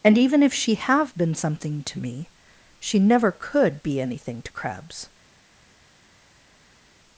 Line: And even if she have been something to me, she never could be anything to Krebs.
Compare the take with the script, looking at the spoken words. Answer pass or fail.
pass